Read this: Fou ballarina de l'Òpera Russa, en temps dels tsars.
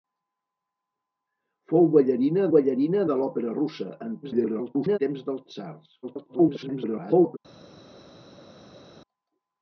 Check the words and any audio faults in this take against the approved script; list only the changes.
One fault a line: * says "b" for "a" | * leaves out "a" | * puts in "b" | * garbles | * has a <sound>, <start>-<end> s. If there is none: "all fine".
* puts in "ballarina"
* garbles
* garbles